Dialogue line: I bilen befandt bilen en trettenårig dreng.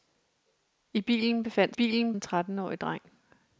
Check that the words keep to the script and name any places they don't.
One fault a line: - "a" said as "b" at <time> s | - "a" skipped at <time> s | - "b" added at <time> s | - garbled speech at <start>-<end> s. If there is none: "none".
none